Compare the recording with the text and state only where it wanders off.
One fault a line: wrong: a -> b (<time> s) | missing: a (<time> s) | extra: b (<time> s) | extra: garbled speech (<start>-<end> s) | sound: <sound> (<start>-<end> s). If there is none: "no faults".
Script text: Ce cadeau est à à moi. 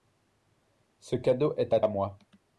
no faults